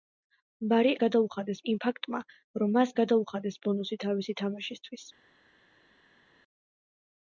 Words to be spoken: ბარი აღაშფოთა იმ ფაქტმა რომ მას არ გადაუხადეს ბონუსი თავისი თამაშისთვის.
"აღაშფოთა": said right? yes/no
no